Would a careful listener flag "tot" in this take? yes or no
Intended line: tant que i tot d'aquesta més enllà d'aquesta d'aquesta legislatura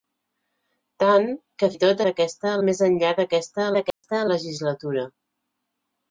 no